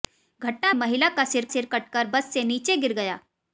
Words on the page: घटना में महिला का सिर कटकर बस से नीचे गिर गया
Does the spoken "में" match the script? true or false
false